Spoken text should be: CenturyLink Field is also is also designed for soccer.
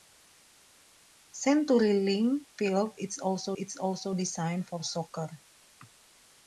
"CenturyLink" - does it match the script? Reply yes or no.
yes